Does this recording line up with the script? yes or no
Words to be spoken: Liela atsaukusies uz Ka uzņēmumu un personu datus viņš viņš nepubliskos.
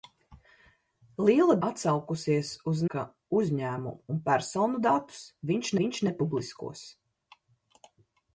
yes